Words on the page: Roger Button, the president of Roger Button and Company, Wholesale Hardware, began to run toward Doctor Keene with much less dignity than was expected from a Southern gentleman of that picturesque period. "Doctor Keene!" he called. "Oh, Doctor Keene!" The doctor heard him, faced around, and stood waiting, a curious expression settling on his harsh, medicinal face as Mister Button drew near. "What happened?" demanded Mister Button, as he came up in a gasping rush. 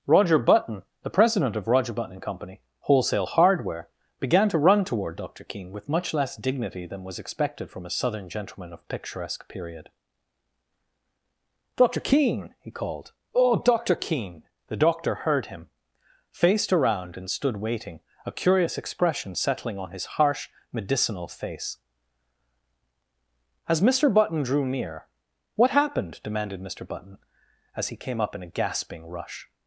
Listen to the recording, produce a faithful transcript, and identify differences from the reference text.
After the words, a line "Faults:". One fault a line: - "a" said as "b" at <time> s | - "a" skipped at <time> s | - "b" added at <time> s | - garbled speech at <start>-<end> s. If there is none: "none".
Roger Button, the president of Roger Button and Company, Wholesale Hardware, began to run toward Doctor Keene with much less dignity than was expected from a Southern gentleman of picturesque period. "Doctor Keene!" he called. "Oh, Doctor Keene!" The doctor heard him, faced around, and stood waiting, a curious expression settling on his harsh, medicinal face as Mister Button drew near. "What happened?" demanded Mister Button, as he came up in a gasping rush.
Faults:
- "that" skipped at 8.9 s